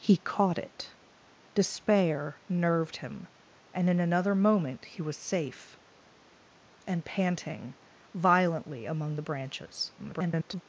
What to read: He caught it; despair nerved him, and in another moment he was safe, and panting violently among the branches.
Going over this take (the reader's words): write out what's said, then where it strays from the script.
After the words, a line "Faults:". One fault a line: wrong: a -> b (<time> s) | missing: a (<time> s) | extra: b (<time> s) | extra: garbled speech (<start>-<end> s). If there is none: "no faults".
He caught it; despair nerved him, and in another moment he was safe, and panting violently among the branches. [garbled]
Faults:
extra: garbled speech (10.0-10.6 s)